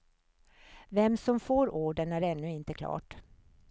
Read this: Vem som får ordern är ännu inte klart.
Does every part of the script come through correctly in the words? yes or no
yes